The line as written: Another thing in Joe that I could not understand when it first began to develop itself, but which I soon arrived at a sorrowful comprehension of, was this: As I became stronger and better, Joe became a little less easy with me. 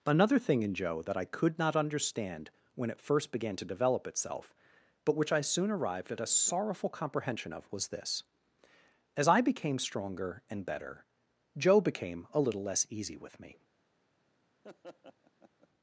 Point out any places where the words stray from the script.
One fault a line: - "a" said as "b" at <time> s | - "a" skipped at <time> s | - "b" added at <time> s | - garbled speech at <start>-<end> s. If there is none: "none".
none